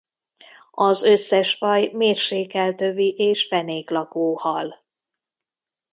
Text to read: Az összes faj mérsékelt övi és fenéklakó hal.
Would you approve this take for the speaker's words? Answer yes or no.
yes